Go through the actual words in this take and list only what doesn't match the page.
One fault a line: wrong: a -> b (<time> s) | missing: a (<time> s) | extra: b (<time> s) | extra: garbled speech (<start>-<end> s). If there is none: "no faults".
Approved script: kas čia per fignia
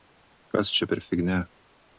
no faults